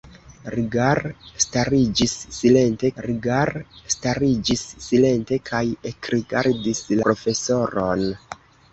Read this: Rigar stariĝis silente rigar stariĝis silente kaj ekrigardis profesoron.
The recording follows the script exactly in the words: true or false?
true